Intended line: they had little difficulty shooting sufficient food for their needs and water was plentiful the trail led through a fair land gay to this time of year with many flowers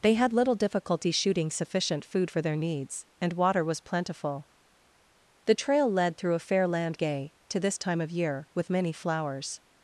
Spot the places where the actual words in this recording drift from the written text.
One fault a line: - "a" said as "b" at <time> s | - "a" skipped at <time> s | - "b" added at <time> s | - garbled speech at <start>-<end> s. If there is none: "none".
none